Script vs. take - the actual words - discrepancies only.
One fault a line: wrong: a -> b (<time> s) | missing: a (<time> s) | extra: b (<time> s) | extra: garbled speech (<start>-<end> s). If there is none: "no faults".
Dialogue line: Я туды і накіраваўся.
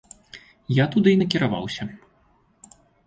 no faults